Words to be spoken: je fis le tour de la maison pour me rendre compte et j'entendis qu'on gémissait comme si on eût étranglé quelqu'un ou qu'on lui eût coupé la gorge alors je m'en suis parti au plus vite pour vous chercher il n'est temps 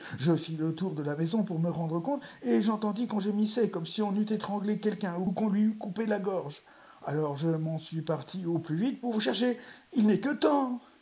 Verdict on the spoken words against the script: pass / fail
fail